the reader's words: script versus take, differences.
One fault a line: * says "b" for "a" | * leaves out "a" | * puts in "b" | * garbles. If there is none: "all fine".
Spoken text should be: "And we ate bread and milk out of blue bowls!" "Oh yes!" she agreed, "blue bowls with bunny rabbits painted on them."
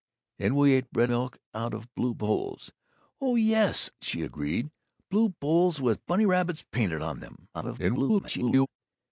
* leaves out "and"
* garbles